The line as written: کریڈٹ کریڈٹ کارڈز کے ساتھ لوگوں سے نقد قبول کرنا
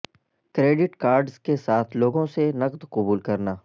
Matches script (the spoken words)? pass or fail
fail